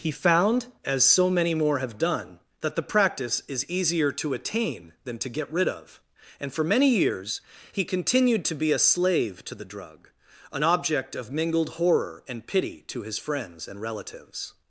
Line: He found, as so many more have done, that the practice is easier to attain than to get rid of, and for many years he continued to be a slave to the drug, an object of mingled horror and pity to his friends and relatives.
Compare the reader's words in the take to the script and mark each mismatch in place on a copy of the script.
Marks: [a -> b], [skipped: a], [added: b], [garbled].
He found, as so many more have done, that the practice is easier to attain than to get rid of, and for many years he continued to be a slave to the drug, an object of mingled horror and pity to his friends and relatives.